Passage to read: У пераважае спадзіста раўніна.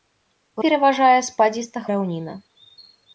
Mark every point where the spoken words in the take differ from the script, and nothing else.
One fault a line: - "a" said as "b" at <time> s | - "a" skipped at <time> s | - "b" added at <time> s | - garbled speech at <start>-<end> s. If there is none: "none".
none